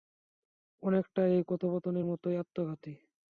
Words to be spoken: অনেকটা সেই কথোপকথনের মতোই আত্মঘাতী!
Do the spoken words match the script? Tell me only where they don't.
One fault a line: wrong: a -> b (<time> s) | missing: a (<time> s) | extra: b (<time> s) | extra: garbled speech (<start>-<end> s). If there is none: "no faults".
wrong: সেই -> এই (1.3 s)